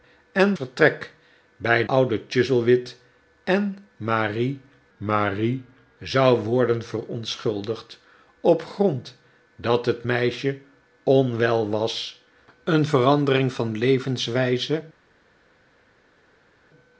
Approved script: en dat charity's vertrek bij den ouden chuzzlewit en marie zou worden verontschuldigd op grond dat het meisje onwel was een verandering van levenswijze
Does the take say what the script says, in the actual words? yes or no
no